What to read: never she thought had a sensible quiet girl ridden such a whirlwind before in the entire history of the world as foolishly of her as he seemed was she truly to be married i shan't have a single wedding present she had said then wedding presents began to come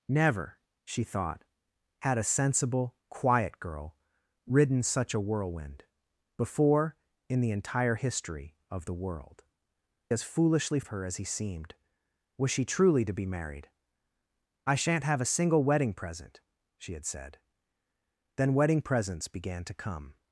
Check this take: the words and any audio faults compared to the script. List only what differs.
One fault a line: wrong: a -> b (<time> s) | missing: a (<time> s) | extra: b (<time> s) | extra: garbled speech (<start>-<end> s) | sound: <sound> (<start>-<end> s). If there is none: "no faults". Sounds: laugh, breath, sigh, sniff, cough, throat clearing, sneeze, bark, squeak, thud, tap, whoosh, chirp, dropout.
no faults